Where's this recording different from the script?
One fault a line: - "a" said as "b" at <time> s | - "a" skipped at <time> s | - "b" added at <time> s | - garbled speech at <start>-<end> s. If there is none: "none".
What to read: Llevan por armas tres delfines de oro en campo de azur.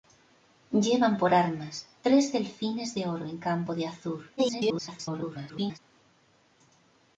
- garbled speech at 4.4-5.8 s